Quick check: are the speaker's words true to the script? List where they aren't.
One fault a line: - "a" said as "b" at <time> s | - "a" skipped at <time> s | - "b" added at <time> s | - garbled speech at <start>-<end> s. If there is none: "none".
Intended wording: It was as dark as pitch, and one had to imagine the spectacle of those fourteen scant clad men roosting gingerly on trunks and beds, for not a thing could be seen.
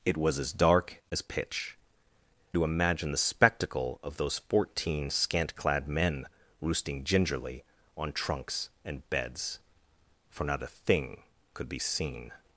- "and one had" skipped at 1.8 s